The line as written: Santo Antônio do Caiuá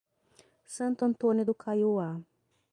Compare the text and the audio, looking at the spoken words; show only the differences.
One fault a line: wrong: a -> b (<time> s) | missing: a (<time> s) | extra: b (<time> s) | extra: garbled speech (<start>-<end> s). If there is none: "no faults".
no faults